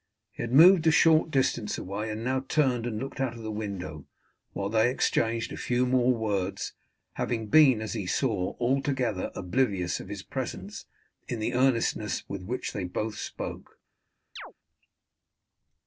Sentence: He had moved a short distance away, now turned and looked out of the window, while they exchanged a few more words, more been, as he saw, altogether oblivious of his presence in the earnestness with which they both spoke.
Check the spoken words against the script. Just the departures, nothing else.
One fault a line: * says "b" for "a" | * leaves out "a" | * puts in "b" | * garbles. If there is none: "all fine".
* puts in "and"
* says "having" for "more"